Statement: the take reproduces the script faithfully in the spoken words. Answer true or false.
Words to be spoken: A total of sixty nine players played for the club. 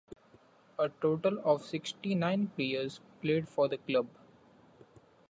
true